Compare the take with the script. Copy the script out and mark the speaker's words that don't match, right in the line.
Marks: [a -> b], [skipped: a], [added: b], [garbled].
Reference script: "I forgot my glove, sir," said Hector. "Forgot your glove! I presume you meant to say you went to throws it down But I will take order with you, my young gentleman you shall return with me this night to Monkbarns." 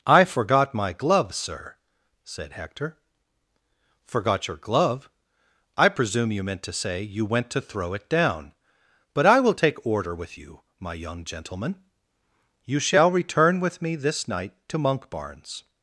"I forgot my glove, sir," said Hector. "Forgot your glove! I presume you meant to say you went to [throws -> throw] it down But I will take order with you, my young gentleman you shall return with me this night to Monkbarns."